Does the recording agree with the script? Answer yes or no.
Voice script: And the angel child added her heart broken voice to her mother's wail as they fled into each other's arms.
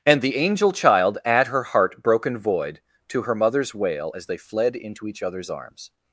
no